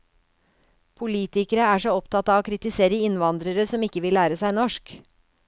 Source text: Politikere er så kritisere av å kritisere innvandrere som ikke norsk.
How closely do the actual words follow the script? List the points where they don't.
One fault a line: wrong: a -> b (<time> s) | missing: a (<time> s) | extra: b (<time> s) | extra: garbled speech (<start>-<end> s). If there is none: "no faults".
wrong: kritisere -> opptatt (2.0 s)
extra: vil lære seg (4.1 s)